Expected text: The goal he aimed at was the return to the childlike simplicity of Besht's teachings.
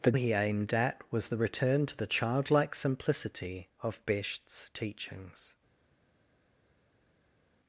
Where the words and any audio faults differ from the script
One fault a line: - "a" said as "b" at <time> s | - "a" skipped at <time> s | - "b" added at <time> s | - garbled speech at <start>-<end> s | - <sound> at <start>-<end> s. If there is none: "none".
- "goal" skipped at 0.1 s